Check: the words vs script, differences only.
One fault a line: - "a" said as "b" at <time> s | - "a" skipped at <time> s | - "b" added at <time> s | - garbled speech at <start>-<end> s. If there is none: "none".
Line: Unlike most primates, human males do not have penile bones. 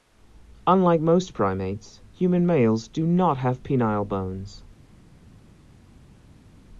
none